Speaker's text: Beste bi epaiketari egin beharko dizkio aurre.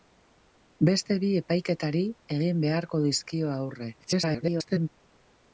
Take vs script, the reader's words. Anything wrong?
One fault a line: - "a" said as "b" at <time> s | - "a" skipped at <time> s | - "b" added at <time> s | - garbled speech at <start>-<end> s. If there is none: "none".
- garbled speech at 4.0-4.9 s